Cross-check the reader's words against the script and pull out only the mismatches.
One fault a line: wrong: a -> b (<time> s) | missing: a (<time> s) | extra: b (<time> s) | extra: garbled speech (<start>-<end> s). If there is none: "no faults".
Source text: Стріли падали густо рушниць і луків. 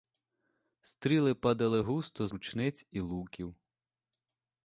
no faults